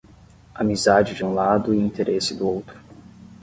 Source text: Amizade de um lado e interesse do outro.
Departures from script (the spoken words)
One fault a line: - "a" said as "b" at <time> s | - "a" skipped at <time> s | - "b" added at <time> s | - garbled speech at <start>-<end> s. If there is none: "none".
none